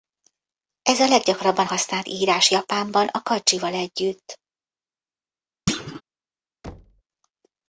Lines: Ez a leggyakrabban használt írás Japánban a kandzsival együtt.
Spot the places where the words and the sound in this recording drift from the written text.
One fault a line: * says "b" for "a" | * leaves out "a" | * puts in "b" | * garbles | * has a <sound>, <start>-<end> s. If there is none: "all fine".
* has a thud, 5.7-6.0 s
* has a thud, 6.6-7.0 s